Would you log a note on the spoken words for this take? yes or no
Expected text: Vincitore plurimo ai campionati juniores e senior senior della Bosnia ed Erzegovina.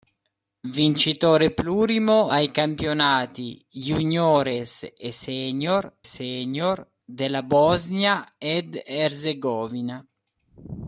no